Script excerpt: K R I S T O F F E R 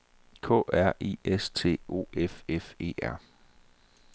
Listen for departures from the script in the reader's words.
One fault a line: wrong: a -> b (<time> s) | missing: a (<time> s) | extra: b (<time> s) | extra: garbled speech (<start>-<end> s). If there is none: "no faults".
no faults